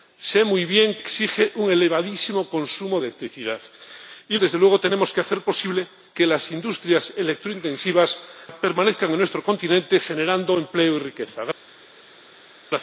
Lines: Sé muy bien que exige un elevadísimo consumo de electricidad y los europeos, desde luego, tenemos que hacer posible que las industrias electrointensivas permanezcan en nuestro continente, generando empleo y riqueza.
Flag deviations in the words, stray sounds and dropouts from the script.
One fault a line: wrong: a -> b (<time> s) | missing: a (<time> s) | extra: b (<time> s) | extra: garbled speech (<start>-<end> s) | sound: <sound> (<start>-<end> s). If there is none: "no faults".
missing: que (1.0 s)
missing: de (3.0 s)
missing: los europeos (4.4 s)